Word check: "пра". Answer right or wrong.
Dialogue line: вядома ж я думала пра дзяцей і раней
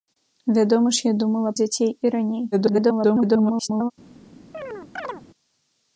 wrong